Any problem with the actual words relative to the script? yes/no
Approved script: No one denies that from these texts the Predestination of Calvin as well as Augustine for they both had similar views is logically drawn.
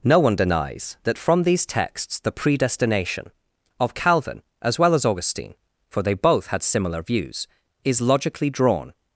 no